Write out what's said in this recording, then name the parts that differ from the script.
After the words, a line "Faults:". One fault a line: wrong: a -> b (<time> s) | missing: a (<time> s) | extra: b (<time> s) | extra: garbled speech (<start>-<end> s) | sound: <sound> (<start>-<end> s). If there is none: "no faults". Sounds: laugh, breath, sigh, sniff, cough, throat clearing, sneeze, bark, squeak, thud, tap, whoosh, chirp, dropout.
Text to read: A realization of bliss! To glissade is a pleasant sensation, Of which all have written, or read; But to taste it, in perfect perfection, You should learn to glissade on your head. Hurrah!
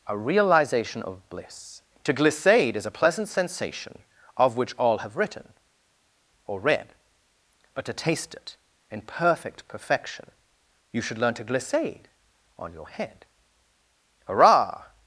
A realization of bliss! To glissade is a pleasant sensation, Of which all have written, or read; But to taste it, in perfect perfection, You should learn to glissade on your head. Hurrah!
Faults:
no faults